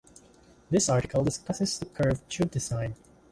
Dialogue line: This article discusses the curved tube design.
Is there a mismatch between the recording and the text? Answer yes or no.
no